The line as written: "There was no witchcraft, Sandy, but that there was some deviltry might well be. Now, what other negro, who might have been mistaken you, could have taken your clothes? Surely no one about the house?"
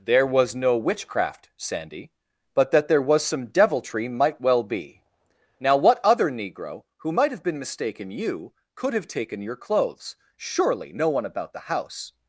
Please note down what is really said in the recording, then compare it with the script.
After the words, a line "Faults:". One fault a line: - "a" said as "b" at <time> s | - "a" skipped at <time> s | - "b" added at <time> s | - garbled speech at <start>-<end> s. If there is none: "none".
"There was no witchcraft, Sandy, but that there was some deviltry might well be. Now, what other negro, who might have been mistaken you, could have taken your clothes? Surely no one about the house?"
Faults:
none